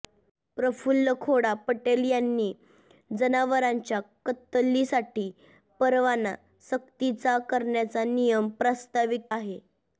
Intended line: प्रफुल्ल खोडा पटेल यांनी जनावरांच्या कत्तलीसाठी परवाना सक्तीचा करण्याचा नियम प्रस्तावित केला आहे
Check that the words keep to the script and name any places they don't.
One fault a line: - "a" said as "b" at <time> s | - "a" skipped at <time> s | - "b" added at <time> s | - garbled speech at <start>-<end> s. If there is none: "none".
- "केला" skipped at 9.3 s